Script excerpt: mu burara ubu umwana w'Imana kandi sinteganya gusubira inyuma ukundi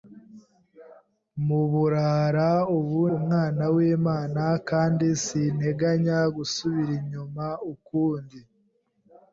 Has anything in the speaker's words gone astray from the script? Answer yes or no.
no